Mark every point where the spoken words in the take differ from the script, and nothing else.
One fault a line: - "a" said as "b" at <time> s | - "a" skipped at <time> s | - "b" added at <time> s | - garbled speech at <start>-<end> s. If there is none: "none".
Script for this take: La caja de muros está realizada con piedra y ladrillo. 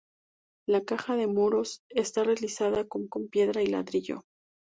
- "con" added at 3.1 s